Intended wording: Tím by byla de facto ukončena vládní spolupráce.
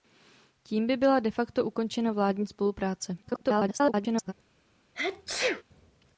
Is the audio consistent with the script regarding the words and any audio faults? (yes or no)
no